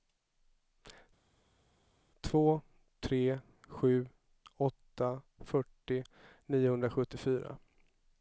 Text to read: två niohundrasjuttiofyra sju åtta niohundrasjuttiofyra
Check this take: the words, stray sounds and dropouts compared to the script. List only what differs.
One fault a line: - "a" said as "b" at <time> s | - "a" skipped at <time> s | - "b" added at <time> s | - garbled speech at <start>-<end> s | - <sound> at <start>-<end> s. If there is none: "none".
- "niohundrasjuttiofyra" said as "tre" at 3.0 s
- "fyrtio" added at 5.4 s